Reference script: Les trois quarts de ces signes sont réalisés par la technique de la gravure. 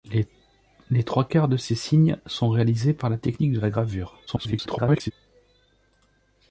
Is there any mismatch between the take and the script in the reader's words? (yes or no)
yes